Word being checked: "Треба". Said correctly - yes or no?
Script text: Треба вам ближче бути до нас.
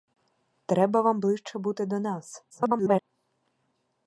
yes